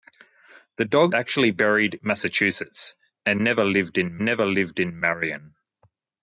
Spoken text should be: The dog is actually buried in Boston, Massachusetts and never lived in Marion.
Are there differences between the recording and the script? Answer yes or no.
yes